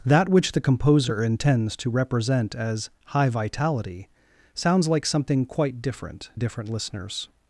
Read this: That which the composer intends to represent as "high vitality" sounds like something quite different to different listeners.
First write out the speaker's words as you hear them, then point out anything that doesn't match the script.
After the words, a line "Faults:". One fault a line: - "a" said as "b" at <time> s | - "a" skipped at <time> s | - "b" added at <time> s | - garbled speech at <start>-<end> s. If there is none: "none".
That which the composer intends to represent as "high vitality" sounds like something quite different different listeners.
Faults:
- "to" skipped at 6.3 s